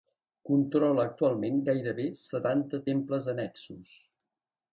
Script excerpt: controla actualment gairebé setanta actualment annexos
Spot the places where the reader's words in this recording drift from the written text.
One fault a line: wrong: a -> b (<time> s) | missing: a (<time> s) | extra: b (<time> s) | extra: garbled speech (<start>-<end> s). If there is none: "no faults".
wrong: actualment -> temples (2.9 s)